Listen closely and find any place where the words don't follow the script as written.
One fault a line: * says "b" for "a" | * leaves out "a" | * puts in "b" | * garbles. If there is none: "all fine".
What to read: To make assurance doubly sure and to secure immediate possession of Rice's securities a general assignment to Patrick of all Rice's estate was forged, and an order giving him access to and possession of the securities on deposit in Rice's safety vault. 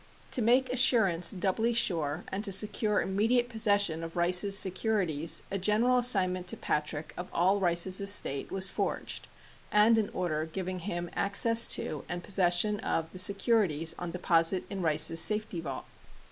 all fine